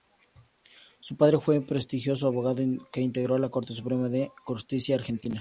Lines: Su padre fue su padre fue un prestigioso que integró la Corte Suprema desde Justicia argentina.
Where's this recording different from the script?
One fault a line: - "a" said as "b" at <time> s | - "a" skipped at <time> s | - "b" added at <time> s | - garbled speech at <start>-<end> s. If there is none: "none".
- "su padre fue" skipped at 1.6 s
- "abogado" added at 2.2 s
- "desde" said as "de" at 4.1 s